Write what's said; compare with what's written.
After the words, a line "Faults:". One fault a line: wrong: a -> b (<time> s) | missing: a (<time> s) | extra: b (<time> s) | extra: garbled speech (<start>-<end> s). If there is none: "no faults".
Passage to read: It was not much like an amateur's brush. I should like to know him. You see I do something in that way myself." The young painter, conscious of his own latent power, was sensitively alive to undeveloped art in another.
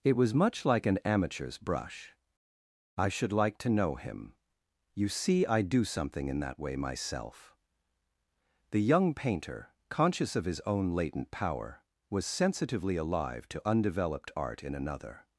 It was much like an amateur's brush. I should like to know him. You see I do something in that way myself." The young painter, conscious of his own latent power, was sensitively alive to undeveloped art in another.
Faults:
missing: not (0.3 s)